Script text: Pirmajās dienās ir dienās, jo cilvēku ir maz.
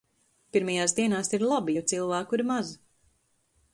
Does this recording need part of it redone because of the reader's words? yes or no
yes